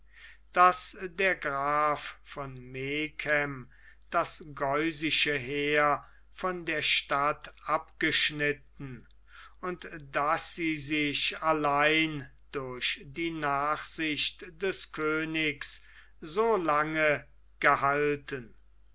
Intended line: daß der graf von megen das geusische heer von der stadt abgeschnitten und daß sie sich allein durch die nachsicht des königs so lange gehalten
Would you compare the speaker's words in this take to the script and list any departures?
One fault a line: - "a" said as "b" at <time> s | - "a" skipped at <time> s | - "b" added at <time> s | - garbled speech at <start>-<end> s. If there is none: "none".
none